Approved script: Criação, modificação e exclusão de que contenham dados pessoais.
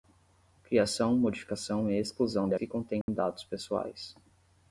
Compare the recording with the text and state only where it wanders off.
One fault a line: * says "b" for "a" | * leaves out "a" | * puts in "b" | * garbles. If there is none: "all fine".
all fine